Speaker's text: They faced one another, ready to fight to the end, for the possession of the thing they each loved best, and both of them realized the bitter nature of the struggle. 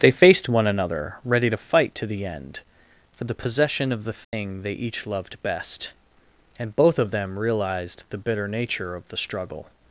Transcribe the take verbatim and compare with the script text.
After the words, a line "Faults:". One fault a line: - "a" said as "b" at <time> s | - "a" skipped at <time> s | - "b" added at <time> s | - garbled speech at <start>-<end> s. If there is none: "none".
They faced one another, ready to fight to the end, for the possession of the thing they each loved best, and both of them realized the bitter nature of the struggle.
Faults:
none